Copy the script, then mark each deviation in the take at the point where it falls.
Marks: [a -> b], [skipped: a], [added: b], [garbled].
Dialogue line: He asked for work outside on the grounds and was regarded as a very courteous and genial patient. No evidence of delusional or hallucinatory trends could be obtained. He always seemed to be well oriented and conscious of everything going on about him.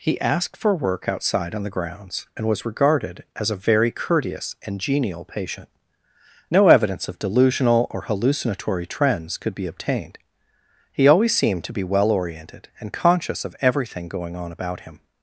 He asked for work outside on the grounds and was regarded as a very courteous and genial patient. No evidence of delusional or hallucinatory trends could be obtained. He always seemed to be well oriented and conscious of everything going on about him.